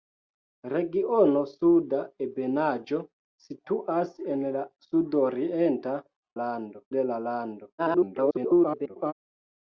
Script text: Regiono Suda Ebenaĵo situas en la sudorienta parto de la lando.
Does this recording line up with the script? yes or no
no